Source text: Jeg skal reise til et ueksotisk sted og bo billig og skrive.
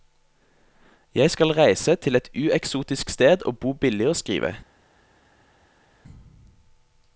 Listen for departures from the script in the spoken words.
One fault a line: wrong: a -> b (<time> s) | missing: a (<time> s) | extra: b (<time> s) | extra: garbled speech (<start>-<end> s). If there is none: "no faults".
no faults